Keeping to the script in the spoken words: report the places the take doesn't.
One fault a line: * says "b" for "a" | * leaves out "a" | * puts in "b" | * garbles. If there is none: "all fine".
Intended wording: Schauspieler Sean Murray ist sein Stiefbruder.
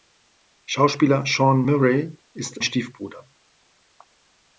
* leaves out "sein"